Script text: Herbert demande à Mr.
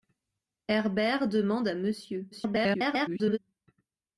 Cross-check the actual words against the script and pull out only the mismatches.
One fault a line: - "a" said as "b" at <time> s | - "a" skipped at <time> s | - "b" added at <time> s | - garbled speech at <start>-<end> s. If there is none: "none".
- garbled speech at 2.3-3.4 s